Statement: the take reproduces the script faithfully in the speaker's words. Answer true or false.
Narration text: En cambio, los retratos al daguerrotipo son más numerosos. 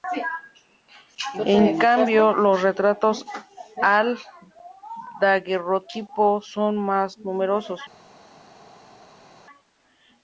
true